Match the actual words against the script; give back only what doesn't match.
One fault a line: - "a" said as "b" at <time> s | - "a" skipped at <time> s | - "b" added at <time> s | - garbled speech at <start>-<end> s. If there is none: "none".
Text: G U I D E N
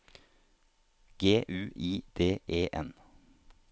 none